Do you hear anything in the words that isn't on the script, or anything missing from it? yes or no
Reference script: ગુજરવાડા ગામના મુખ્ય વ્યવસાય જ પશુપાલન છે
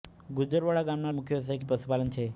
no